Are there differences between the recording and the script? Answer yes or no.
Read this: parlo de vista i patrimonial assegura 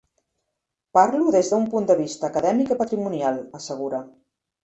yes